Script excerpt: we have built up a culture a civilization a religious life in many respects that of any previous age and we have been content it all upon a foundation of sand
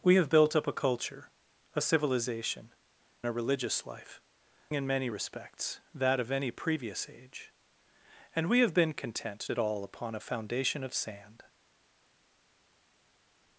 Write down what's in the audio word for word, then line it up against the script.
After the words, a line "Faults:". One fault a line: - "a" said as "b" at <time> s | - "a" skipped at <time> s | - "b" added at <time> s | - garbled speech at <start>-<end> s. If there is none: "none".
we have built up a culture a civilization a religious life in many respects that of any previous age and we have been content it all upon a foundation of sand
Faults:
none